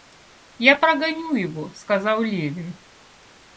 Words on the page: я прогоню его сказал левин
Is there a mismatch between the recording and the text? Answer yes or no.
no